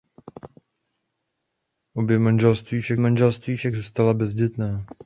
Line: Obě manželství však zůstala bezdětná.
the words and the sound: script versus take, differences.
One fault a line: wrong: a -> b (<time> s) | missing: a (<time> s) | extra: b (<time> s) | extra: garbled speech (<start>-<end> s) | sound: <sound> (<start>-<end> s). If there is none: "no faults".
extra: manželství však (3.0 s)